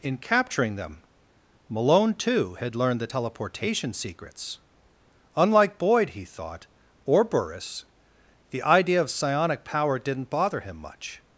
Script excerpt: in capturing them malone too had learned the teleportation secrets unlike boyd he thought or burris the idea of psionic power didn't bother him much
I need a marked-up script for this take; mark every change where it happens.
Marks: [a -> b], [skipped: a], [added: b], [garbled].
in capturing them malone too had learned the teleportation secrets unlike boyd he thought or burris the idea of psionic power didn't bother him much